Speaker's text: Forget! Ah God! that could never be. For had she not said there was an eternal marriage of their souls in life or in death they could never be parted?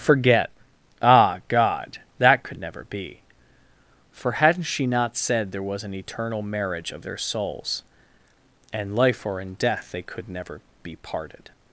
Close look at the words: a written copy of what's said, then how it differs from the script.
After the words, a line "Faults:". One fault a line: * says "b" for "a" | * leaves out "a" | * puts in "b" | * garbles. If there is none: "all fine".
Forget! Ah God! that could never be. For hadn't she not said there was an eternal marriage of their souls and life or in death they could never be parted?
Faults:
* says "hadn't" for "had"
* says "and" for "in"